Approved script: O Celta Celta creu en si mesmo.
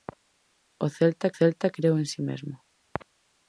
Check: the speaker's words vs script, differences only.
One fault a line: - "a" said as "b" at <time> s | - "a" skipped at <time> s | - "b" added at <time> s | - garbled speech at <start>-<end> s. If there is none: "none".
none